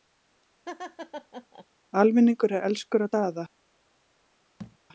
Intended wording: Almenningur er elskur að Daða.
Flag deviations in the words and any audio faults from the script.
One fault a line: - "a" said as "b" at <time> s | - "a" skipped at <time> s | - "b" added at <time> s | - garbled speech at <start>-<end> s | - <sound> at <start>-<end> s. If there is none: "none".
- laugh at 0.7-1.7 s
- thud at 4.6-4.8 s